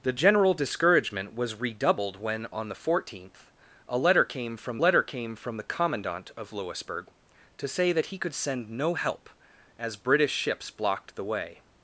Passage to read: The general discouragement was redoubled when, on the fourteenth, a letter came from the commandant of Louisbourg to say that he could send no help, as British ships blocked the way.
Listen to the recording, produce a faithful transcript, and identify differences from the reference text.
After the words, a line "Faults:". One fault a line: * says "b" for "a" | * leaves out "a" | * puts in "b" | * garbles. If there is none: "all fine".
The general discouragement was redoubled when, on the fourteenth, a letter came from letter came from the commandant of Louisbourg to say that he could send no help, as British ships blocked the way.
Faults:
* puts in "letter came from"